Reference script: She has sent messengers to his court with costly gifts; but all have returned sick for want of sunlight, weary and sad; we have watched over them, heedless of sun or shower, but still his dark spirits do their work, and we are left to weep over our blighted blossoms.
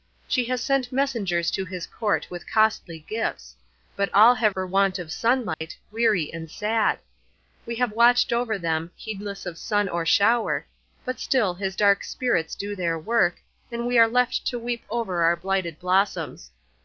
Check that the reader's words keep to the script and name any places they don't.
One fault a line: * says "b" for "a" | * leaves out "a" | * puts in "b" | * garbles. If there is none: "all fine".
* leaves out "returned sick"